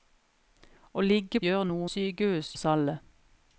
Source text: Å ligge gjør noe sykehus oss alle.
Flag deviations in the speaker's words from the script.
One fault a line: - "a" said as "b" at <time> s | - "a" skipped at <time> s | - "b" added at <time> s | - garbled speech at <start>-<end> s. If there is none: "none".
none